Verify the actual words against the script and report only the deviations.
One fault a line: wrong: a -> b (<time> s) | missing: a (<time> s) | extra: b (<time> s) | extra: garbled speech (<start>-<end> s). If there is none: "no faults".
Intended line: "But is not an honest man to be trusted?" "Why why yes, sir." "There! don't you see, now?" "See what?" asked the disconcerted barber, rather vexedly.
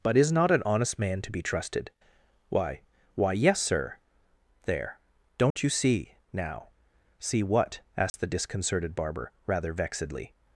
no faults